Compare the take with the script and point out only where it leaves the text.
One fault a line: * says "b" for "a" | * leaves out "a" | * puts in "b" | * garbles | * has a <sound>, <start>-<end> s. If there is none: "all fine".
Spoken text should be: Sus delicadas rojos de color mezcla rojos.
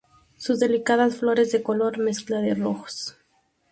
* says "flores" for "rojos"
* puts in "de"